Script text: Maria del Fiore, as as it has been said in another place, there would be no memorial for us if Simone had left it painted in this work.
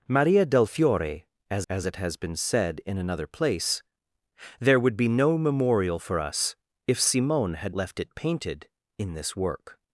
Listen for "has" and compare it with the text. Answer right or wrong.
right